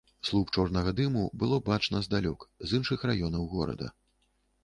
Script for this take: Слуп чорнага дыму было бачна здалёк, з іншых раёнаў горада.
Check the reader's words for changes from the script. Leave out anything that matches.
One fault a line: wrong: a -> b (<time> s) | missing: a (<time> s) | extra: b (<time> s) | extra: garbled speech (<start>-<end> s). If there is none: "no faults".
no faults